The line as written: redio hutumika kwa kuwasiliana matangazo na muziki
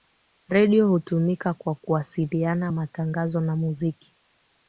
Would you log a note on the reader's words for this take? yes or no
no